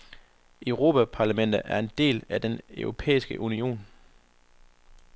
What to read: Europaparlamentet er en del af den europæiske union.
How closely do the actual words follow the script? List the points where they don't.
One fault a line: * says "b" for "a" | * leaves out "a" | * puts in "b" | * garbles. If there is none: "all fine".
all fine